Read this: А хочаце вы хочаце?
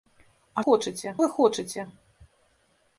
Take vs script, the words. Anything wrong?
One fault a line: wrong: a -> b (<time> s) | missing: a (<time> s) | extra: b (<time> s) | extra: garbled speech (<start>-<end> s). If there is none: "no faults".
no faults